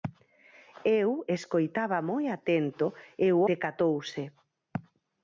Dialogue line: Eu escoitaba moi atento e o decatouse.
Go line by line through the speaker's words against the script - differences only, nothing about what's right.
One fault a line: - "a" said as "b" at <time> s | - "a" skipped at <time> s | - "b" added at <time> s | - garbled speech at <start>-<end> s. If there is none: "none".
none